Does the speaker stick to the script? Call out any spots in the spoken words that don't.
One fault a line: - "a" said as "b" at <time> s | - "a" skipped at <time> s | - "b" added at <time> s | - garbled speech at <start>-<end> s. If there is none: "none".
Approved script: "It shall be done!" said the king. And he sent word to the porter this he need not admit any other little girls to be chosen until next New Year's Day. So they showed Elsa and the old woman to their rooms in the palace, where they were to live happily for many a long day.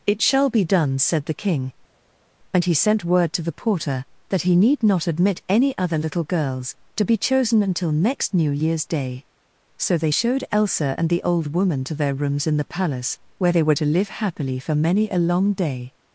- "this" said as "that" at 4.3 s